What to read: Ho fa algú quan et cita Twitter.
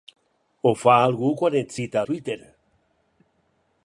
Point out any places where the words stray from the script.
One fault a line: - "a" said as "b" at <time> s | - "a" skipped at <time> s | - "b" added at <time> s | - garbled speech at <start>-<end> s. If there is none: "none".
none